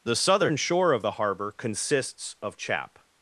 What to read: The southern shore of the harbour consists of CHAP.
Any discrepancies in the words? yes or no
no